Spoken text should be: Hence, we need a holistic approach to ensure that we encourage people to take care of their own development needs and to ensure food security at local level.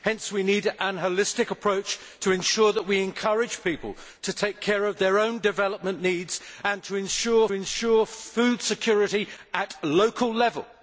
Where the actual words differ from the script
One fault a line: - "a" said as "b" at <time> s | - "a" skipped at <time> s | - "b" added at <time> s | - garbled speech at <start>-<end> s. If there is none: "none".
- "ensure" added at 7.5 s